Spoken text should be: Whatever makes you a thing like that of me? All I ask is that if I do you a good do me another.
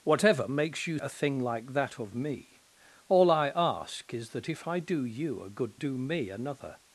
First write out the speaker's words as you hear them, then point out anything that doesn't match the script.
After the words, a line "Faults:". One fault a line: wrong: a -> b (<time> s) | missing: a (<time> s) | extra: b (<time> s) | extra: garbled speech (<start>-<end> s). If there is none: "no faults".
Whatever makes you a thing like that of me? All I ask is that if I do you a good do me another.
Faults:
no faults